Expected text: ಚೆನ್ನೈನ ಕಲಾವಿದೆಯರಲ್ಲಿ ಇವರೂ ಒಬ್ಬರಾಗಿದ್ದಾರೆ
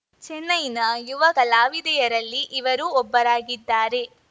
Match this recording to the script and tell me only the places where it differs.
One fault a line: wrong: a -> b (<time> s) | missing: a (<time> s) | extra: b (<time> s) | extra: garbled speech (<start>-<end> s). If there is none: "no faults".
extra: ಯುವ (1.1 s)